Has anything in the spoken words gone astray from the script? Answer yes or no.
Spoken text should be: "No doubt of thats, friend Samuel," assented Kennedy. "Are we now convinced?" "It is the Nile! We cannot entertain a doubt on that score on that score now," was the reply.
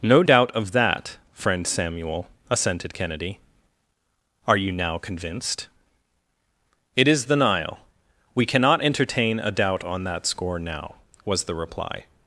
yes